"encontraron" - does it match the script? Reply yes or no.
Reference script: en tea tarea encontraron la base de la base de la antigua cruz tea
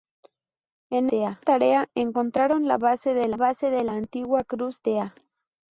yes